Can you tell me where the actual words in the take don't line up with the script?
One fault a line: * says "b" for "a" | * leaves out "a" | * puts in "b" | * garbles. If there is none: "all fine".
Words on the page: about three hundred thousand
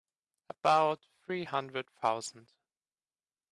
all fine